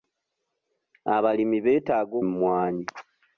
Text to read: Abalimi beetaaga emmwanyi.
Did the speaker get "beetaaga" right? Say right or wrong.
right